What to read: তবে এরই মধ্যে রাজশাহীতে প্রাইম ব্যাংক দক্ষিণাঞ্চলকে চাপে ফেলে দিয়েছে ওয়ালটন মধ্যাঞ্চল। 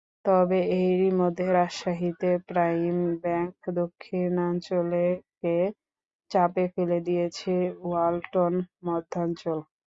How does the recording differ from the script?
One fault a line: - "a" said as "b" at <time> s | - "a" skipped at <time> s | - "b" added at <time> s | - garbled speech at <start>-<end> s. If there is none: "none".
none